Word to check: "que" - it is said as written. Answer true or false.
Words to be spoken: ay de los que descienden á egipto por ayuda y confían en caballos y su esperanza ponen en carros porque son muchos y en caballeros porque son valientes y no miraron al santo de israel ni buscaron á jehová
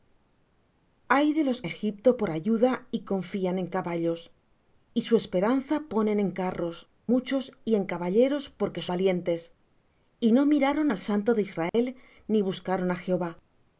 false